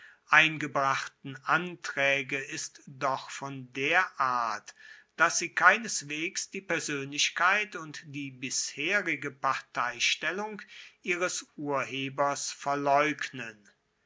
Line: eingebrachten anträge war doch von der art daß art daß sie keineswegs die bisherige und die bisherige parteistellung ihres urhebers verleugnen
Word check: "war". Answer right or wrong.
wrong